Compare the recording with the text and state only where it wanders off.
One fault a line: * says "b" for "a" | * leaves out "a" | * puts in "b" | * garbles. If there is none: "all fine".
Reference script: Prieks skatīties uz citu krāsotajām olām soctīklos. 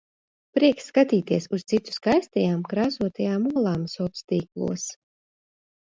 * puts in "skaistajām"